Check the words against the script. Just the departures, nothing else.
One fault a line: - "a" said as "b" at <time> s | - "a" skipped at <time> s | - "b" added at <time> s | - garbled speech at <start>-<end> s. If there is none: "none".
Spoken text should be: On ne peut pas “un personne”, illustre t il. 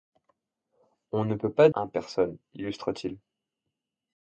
none